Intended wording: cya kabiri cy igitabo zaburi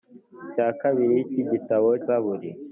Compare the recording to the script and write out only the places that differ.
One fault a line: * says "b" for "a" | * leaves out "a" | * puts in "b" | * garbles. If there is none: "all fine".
all fine